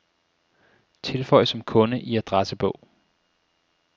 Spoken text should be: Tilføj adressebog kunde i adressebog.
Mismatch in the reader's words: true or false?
true